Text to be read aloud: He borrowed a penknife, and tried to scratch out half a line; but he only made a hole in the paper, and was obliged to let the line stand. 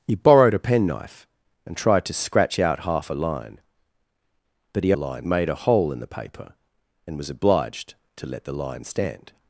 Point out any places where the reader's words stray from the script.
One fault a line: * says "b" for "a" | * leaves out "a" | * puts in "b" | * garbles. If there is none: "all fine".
* says "line" for "only"